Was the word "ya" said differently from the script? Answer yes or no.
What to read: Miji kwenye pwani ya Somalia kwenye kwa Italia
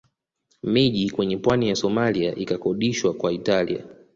no